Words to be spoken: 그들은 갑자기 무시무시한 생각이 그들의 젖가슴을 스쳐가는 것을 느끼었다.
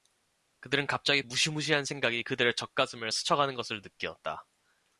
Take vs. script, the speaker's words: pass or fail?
pass